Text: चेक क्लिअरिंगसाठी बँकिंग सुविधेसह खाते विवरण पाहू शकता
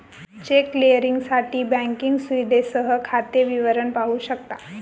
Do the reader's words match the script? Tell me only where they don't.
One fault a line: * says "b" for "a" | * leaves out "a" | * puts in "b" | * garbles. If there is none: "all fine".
all fine